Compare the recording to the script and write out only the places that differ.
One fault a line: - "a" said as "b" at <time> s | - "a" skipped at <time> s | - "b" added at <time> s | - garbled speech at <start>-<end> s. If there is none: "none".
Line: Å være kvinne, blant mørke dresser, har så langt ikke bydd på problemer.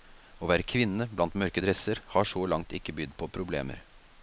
none